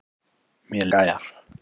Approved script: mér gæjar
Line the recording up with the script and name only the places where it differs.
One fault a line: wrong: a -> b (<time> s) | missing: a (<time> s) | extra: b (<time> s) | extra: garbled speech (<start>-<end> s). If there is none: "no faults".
no faults